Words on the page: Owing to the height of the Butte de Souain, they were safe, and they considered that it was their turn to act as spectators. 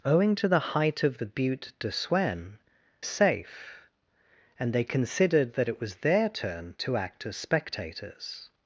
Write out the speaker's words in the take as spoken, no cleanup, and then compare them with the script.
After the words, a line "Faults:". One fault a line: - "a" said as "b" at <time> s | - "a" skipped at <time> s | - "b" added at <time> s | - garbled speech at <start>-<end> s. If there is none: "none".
Owing to the height of the Butte de Souain, safe, and they considered that it was their turn to act as spectators.
Faults:
- "they were" skipped at 2.6 s